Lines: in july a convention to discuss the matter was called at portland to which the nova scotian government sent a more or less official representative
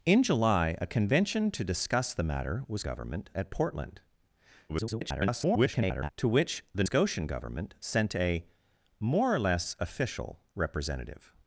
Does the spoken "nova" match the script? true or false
false